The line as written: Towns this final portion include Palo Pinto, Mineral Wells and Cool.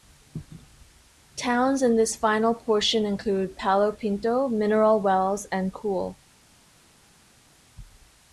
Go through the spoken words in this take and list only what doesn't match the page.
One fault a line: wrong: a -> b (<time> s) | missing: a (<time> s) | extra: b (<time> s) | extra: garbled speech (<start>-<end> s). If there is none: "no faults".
extra: in (1.8 s)